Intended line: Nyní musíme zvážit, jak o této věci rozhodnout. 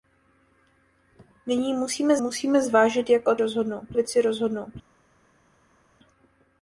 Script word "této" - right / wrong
wrong